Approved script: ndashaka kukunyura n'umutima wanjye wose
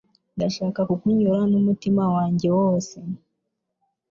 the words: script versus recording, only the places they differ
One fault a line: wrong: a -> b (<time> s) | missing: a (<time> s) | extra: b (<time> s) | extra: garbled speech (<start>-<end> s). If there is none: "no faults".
no faults